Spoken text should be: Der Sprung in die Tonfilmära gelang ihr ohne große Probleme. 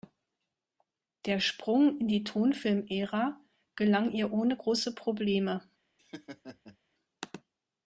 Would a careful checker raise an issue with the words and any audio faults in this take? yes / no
yes